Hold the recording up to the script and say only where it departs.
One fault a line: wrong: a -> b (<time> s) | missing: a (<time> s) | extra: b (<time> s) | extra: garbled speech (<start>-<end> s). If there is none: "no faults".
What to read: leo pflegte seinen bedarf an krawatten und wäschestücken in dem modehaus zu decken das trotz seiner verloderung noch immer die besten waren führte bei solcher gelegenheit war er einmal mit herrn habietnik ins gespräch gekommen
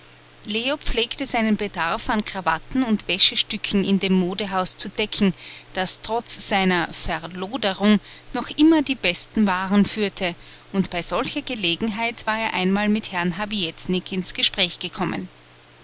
extra: und (10.7 s)